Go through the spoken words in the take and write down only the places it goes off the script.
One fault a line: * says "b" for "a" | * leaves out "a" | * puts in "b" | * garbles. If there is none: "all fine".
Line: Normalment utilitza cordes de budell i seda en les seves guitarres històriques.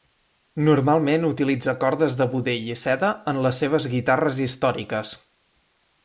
all fine